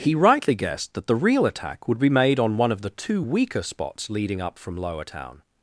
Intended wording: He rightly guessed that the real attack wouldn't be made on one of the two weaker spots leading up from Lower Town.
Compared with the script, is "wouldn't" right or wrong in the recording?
wrong